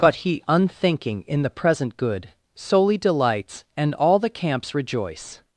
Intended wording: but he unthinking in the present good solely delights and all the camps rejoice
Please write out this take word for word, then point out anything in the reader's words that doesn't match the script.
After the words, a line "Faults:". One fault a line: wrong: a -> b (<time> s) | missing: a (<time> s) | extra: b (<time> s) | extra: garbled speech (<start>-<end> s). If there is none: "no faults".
but he unthinking in the present good solely delights and all the camps rejoice
Faults:
no faults